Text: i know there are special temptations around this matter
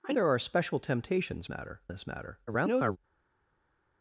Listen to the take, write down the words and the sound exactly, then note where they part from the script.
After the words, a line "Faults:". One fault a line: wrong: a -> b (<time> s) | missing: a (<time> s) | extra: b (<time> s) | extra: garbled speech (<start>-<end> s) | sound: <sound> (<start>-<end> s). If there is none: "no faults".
i there are special temptations matter this matter [garbled]
Faults:
missing: know (0.1 s)
wrong: around -> matter (1.5 s)
extra: garbled speech (2.5-3.0 s)